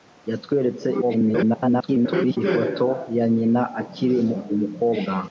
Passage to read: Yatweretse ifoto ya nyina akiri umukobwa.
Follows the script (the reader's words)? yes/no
no